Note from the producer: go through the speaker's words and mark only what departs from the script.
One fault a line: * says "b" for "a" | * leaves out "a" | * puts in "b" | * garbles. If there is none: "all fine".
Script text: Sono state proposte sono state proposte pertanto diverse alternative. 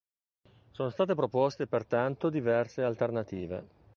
* leaves out "sono state proposte"